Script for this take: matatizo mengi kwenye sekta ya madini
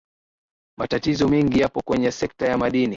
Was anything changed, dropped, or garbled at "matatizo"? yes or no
no